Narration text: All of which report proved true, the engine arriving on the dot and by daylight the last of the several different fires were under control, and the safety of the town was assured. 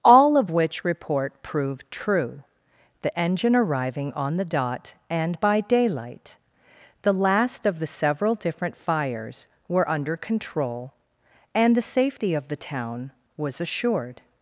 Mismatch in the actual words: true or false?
false